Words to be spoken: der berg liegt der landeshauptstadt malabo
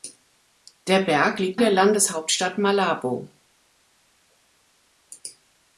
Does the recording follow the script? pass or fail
pass